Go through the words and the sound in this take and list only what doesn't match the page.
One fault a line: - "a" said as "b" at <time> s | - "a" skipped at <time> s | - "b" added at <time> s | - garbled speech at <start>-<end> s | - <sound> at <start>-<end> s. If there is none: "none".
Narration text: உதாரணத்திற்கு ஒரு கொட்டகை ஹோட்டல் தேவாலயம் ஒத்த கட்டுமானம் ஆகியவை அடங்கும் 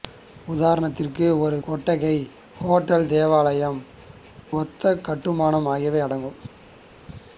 none